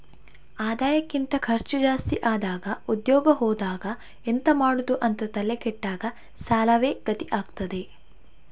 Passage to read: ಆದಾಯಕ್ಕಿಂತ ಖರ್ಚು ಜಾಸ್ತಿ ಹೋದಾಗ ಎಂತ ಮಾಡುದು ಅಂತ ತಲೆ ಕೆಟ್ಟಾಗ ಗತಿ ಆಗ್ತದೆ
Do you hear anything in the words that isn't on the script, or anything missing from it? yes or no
yes